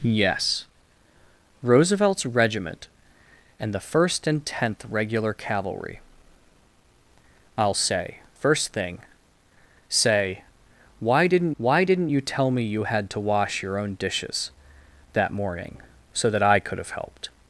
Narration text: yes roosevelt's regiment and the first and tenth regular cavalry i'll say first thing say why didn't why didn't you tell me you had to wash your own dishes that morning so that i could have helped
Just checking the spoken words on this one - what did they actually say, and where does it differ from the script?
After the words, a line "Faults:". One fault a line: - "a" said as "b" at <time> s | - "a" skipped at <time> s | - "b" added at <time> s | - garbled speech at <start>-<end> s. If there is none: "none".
yes roosevelt's regiment and the first and tenth regular cavalry i'll say first thing say why didn't why didn't you tell me you had to wash your own dishes that morning so that i could have helped
Faults:
none